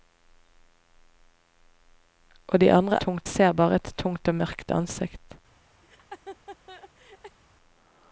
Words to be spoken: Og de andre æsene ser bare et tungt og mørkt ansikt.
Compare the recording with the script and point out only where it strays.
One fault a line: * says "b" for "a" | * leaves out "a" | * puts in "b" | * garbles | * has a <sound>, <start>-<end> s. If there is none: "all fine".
* says "tungt" for "æsene"
* has a laugh, 5.8-7.4 s